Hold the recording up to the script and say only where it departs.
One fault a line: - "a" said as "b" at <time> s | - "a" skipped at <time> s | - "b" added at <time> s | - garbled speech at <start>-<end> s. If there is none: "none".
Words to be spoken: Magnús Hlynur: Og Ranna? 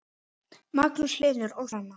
none